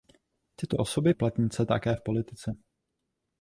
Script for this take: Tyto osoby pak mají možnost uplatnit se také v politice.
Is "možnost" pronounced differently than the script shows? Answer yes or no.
yes